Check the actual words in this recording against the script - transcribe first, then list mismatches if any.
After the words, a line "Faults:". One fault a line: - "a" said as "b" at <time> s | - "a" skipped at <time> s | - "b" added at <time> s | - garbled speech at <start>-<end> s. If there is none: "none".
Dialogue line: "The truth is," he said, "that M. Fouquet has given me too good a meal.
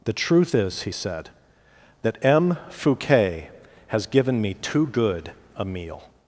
"The truth is," he said, "that M. Fouquet has given me too good a meal.
Faults:
none